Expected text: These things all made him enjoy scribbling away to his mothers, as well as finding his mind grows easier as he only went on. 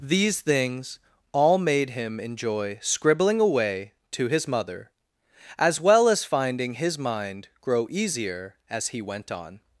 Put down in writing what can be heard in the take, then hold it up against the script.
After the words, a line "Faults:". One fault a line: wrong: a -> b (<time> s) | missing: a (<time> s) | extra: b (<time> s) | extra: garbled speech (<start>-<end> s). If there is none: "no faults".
These things all made him enjoy scribbling away to his mother, as well as finding his mind grow easier as he went on.
Faults:
wrong: mothers -> mother (4.5 s)
wrong: grows -> grow (7.6 s)
missing: only (9.0 s)